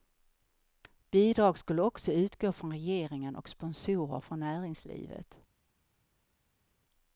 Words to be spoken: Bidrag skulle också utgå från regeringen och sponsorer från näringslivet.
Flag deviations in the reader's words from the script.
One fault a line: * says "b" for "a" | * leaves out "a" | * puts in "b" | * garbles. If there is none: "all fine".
all fine